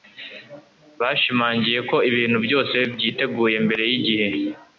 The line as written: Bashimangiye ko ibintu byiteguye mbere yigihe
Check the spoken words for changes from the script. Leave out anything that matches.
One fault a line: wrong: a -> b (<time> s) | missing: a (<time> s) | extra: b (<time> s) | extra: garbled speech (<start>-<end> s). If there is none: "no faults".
extra: byose (2.5 s)